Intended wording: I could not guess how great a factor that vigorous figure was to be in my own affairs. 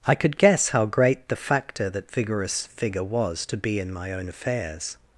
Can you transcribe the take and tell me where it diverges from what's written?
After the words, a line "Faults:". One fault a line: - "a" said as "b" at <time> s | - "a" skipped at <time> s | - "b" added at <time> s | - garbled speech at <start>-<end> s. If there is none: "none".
I could guess how great the factor that vigorous figure was to be in my own affairs.
Faults:
- "not" skipped at 0.4 s
- "a" said as "the" at 1.3 s